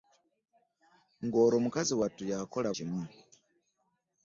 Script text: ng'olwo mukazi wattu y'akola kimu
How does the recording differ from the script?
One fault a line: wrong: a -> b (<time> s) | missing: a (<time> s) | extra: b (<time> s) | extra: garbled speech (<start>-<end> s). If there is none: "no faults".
no faults